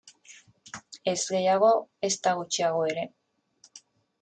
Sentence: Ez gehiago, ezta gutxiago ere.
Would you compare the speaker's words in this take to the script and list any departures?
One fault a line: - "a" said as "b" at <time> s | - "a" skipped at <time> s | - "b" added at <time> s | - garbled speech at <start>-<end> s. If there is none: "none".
none